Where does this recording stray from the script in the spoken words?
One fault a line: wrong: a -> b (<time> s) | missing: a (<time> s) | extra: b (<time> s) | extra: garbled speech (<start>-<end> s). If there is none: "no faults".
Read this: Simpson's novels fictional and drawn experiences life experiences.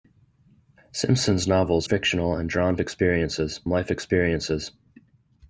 no faults